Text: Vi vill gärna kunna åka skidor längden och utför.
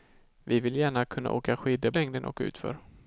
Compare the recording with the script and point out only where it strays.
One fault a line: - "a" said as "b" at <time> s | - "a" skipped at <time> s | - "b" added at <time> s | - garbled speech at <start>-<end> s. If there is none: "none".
none